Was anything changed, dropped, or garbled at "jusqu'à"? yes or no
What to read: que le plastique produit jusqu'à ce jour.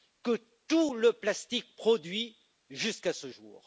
no